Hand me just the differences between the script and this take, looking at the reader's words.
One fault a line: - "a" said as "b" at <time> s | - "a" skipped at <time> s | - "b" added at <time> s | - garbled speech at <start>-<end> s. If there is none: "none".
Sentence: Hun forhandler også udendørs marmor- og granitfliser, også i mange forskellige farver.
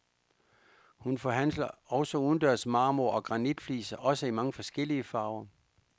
none